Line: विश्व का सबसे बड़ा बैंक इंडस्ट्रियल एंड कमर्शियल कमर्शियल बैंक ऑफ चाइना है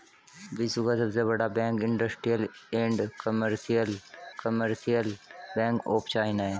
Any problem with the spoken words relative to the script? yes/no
no